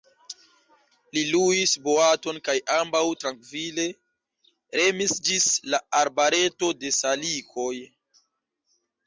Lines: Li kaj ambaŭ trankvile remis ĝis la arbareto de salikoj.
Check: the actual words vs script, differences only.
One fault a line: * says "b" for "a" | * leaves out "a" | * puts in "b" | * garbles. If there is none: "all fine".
* puts in "luis boaton"